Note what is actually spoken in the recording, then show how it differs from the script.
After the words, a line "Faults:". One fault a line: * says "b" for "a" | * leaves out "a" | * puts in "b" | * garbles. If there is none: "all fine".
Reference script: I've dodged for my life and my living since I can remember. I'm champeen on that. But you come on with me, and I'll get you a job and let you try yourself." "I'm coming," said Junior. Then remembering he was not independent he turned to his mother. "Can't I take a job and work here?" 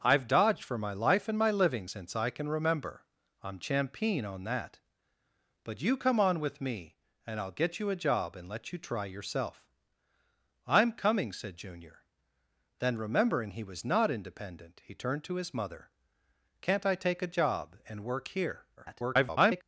I've dodged for my life and my living since I can remember. I'm champeen on that. But you come on with me, and I'll get you a job and let you try yourself." "I'm coming," said Junior. Then remembering he was not independent he turned to his mother. "Can't I take a job and work here?" [garbled]
Faults:
* garbles